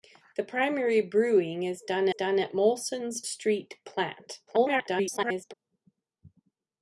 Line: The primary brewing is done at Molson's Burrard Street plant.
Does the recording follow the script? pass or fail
fail